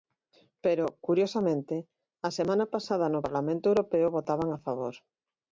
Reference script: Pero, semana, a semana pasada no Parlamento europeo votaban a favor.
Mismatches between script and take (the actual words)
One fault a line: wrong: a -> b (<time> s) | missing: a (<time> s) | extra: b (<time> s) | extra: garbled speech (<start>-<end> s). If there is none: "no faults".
wrong: semana -> curiosamente (1.1 s)